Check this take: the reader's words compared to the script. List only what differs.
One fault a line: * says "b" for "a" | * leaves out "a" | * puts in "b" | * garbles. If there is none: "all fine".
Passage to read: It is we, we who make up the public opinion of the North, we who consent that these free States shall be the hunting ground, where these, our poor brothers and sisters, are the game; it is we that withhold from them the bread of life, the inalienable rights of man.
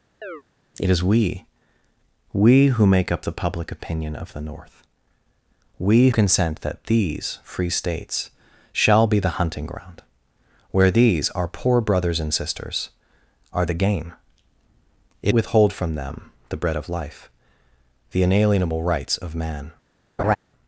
* leaves out "who"
* leaves out "is we that"